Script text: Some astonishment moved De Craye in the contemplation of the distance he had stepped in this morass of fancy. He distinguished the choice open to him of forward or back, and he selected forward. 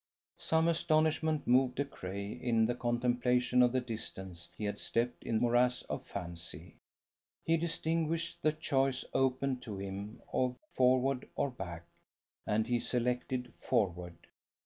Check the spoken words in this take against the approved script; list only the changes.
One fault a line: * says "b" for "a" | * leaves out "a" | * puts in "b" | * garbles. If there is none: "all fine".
* leaves out "this"